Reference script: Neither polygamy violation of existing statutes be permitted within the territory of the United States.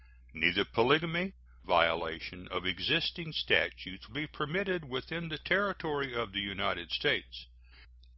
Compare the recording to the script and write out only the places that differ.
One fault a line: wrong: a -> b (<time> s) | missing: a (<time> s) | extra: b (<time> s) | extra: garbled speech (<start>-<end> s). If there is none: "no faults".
no faults